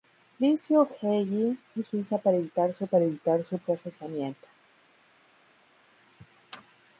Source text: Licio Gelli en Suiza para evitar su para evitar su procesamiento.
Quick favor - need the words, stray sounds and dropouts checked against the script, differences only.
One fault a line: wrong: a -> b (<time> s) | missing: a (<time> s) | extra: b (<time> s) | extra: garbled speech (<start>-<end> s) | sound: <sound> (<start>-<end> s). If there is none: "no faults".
no faults